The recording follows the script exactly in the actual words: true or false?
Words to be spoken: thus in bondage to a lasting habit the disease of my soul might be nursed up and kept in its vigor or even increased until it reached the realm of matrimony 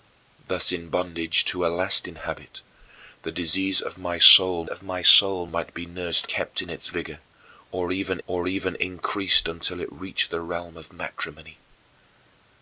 false